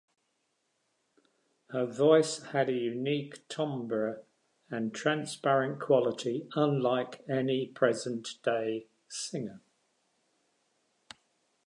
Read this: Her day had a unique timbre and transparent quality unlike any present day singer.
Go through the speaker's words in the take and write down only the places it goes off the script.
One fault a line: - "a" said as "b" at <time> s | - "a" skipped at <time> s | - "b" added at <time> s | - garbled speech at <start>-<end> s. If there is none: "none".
- "day" said as "voice" at 1.9 s